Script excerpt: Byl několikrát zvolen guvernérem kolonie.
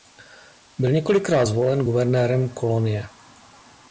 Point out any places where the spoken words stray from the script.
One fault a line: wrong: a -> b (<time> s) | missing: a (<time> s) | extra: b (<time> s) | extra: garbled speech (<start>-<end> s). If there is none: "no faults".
no faults